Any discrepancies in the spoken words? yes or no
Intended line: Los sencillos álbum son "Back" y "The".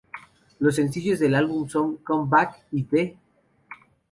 yes